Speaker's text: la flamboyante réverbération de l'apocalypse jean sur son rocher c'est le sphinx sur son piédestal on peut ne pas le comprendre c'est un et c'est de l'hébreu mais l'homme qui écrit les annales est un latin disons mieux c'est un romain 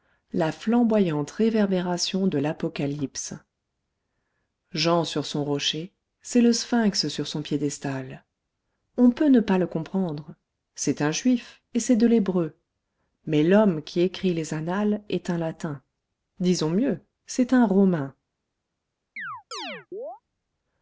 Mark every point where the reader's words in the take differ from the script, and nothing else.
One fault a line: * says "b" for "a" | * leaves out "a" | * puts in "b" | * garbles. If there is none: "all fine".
* puts in "juif"